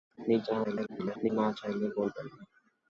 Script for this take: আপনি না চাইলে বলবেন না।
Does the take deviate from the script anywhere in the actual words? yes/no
yes